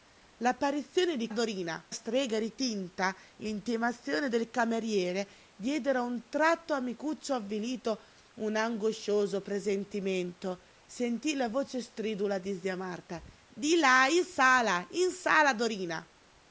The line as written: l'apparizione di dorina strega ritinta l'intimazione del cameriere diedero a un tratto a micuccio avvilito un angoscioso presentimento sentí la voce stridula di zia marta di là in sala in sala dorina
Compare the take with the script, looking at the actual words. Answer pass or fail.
pass